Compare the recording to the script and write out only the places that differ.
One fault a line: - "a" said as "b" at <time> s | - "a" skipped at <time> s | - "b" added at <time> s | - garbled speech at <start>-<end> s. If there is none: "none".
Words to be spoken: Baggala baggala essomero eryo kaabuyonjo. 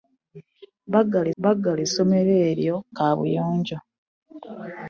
none